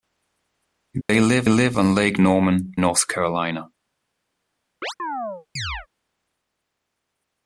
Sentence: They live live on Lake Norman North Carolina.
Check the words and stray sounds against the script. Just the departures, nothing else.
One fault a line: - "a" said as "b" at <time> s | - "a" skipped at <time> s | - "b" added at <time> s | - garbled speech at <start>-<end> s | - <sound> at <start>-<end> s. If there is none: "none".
- dropout at 1.0-1.1 s
- chirp at 4.8-5.9 s